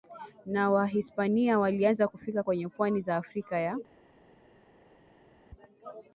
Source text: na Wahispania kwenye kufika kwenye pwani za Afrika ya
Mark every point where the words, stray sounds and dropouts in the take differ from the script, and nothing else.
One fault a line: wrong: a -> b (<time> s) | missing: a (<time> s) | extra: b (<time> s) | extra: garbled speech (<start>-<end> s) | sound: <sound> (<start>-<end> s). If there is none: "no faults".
wrong: kwenye -> walianza (1.6 s)